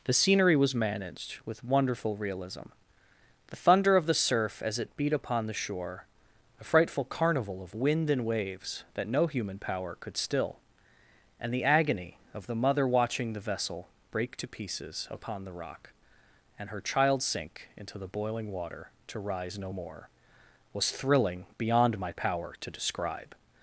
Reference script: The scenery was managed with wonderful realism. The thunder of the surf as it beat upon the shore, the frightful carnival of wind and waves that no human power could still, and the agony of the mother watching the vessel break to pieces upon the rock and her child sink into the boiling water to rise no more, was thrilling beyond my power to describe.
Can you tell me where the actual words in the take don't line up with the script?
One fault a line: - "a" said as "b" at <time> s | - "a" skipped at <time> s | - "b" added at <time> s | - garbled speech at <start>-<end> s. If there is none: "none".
- "the" said as "a" at 6.6 s